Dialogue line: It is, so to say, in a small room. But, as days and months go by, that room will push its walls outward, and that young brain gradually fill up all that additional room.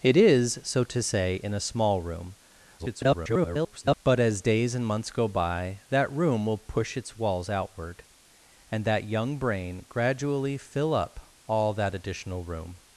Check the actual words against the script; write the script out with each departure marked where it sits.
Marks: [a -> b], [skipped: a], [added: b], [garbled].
It is, so to say, in a small room. [garbled] But, as days and months go by, that room will push its walls outward, and that young brain gradually fill up all that additional room.